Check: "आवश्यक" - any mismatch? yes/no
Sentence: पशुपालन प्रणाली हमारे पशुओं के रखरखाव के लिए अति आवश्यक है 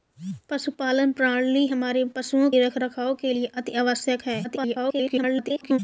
no